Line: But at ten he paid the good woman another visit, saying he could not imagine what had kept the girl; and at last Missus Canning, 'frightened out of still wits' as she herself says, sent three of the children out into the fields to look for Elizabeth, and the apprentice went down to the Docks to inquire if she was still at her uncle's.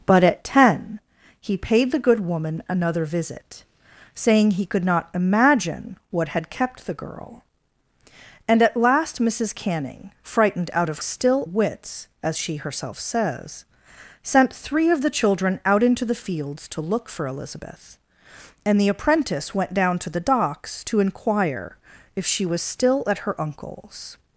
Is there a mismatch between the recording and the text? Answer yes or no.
no